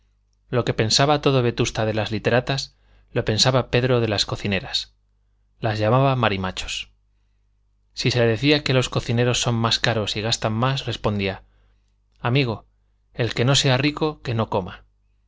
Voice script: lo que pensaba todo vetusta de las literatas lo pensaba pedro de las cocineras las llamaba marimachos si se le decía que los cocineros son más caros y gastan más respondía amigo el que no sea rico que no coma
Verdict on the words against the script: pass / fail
pass